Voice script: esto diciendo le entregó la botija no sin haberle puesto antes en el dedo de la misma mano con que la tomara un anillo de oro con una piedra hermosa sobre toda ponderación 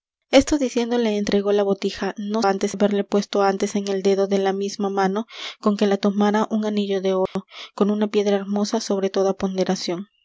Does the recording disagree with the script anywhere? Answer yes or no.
yes